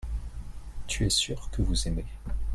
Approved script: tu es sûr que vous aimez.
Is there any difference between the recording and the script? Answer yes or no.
no